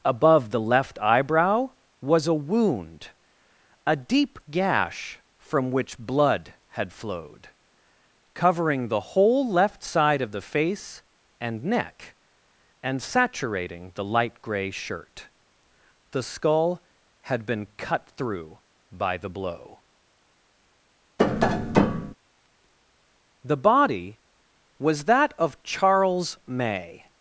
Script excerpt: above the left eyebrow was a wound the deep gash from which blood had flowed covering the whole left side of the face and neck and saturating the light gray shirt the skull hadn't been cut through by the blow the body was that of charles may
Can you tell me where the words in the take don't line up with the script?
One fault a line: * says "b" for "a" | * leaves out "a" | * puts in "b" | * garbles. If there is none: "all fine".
* says "a" for "the"
* says "had" for "hadn't"